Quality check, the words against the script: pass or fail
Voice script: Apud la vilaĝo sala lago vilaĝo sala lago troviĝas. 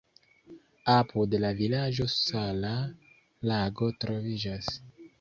fail